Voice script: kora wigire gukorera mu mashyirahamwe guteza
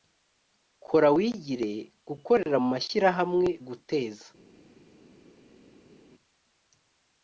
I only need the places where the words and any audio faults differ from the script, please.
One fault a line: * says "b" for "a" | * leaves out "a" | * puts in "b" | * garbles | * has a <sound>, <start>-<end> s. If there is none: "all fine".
all fine